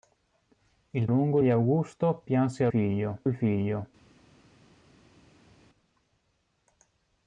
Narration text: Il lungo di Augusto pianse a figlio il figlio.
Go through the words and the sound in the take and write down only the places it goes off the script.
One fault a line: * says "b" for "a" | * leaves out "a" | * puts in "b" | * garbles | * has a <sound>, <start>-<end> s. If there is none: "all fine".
all fine